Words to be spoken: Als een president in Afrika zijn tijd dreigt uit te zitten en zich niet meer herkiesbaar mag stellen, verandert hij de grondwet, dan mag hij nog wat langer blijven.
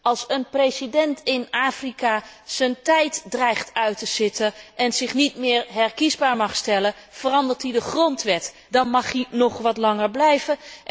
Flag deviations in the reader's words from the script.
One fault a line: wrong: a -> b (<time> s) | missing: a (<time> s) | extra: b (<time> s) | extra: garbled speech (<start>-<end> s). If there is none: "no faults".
no faults